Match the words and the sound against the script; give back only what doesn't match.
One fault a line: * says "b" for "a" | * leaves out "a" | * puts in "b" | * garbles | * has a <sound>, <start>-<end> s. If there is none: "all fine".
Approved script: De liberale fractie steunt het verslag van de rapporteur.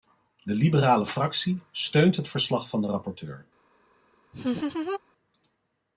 * has a laugh, 4.3-5.0 s